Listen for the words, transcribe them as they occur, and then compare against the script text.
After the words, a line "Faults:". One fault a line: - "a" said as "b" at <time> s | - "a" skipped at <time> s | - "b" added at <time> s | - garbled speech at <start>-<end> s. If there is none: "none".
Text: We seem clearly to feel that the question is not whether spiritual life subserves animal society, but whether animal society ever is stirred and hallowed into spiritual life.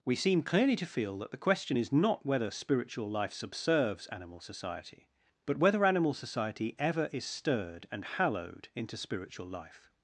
We seem clearly to feel that the question is not whether spiritual life subserves animal society, but whether animal society ever is stirred and hallowed into spiritual life.
Faults:
none